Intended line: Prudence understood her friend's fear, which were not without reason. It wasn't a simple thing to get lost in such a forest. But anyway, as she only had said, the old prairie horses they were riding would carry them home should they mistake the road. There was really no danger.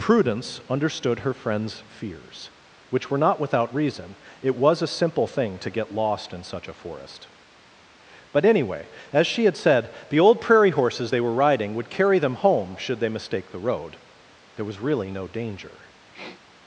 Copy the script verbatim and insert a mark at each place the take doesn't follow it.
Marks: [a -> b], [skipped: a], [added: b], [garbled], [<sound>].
Prudence understood her friend's [fear, -> fears] which were not without reason. It [wasn't -> was] a simple thing to get lost in such a forest. But anyway, as she [skipped: only] had said, the old prairie horses they were riding would carry them home should they mistake the road. There was really no danger. [sniff]